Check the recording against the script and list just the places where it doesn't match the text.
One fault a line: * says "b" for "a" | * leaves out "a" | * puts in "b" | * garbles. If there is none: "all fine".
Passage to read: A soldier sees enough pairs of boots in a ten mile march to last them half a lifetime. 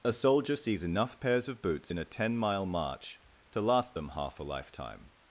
all fine